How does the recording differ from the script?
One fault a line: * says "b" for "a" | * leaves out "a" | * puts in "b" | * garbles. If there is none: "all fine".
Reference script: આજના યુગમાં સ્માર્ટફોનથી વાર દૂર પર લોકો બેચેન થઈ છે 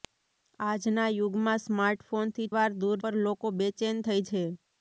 all fine